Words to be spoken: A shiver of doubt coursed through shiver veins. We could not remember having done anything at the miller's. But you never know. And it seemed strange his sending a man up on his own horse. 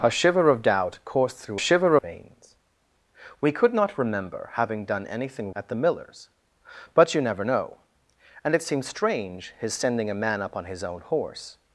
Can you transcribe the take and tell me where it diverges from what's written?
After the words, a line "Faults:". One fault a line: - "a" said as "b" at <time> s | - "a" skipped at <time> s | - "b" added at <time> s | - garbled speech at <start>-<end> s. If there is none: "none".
A shiver of doubt coursed through shiver veins. We could not remember having done anything at the miller's. But you never know. And it seemed strange his sending a man up on his own horse.
Faults:
none